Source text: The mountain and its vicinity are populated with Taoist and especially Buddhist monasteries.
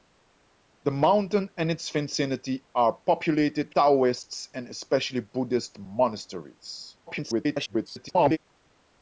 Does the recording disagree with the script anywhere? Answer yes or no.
yes